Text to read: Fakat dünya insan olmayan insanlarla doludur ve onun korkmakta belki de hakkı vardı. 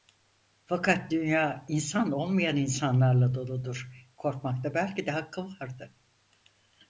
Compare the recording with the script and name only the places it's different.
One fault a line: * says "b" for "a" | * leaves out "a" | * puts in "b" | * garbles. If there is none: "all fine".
* leaves out "ve onun"